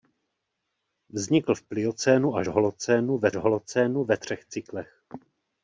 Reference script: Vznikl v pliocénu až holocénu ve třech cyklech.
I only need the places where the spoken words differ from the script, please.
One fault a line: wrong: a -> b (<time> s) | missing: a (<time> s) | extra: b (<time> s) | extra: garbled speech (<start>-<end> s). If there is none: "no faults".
extra: holocénu ve (3.4 s)